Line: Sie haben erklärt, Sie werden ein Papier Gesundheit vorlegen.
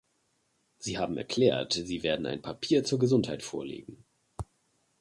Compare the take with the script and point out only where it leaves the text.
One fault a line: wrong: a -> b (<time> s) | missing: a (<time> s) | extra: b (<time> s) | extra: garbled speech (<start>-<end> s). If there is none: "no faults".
extra: zur (2.8 s)